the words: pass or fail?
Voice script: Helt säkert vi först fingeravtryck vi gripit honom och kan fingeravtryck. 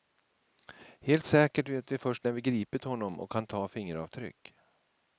fail